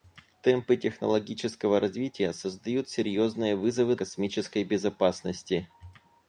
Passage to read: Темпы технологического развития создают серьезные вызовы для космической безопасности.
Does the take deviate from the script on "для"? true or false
true